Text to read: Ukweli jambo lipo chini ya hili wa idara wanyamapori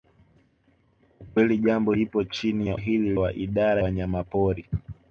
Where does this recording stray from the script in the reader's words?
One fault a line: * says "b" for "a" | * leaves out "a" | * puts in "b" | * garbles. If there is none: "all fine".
all fine